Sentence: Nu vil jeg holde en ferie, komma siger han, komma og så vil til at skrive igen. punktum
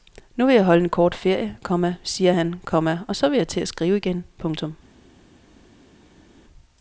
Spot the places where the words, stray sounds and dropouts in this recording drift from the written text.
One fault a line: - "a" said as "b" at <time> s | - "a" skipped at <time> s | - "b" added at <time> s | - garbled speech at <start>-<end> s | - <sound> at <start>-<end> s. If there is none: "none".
- "kort" added at 0.9 s
- "jeg" added at 3.4 s